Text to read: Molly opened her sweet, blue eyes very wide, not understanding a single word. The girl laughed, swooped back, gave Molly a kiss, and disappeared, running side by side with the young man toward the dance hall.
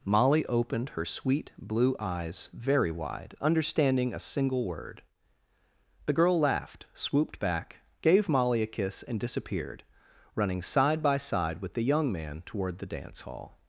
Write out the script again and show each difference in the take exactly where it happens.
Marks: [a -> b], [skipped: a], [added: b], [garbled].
Molly opened her sweet, blue eyes very wide, [skipped: not] understanding a single word. The girl laughed, swooped back, gave Molly a kiss, and disappeared, running side by side with the young man toward the dance hall.